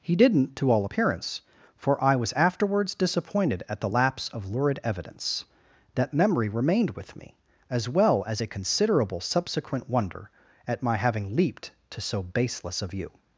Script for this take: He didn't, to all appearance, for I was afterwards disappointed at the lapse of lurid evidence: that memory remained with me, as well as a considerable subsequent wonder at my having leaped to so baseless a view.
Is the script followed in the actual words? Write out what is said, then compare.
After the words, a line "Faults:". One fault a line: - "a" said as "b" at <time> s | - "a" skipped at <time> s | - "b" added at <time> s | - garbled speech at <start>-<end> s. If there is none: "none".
He didn't, to all appearance, for I was afterwards disappointed at the lapse of lurid evidence: that memory remained with me, as well as a considerable subsequent wonder at my having leaped to so baseless a view.
Faults:
none